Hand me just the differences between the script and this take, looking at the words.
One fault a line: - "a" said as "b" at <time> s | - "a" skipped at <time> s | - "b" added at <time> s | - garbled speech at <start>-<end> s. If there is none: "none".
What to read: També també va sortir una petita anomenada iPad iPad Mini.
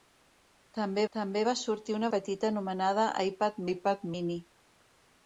none